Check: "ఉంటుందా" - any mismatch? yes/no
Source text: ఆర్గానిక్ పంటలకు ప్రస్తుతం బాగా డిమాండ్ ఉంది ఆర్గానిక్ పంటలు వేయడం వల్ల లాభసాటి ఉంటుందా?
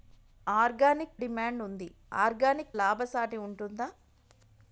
no